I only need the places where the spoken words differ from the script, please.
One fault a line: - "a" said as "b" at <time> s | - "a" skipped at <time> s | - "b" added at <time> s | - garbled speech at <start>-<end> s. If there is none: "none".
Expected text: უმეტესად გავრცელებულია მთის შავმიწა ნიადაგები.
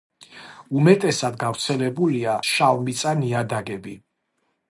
- "მთის" skipped at 2.4 s